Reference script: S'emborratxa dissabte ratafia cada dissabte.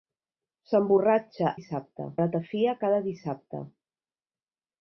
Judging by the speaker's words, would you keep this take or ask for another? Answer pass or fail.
pass